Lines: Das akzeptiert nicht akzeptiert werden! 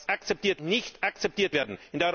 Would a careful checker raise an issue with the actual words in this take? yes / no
no